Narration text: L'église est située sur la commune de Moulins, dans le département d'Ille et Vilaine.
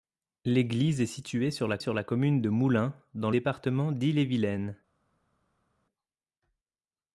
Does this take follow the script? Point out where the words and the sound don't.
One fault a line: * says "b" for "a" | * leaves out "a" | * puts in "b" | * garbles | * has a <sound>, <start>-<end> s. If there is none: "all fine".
* puts in "sur la"
* leaves out "le"